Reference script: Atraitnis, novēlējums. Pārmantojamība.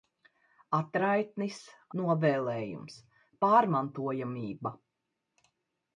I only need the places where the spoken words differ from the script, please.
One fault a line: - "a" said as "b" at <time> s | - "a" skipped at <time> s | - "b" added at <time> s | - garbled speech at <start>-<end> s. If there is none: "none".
none